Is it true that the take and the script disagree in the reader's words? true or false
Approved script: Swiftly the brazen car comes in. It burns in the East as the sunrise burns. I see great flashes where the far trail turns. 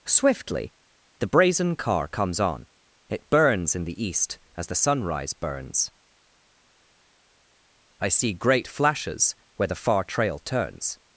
true